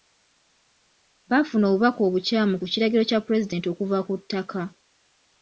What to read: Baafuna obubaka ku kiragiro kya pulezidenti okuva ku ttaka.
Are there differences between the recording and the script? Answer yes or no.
yes